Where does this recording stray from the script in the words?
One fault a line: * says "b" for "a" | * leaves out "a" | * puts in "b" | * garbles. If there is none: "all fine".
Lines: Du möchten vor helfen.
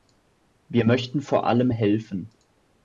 * says "Wir" for "Du"
* puts in "allem"